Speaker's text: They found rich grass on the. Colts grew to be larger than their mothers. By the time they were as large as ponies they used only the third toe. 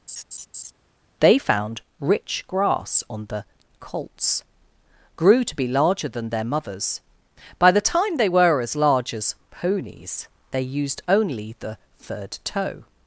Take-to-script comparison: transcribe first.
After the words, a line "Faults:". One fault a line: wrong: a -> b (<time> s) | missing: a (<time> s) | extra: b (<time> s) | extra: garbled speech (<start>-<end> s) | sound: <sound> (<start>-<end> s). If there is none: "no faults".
They found rich grass on the. Colts grew to be larger than their mothers. By the time they were as large as ponies they used only the third toe.
Faults:
sound: laugh (0.1-0.7 s)